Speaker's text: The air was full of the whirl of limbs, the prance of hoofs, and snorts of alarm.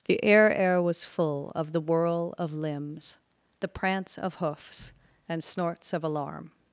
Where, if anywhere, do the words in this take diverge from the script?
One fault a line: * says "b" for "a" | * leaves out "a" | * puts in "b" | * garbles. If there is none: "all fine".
* puts in "air"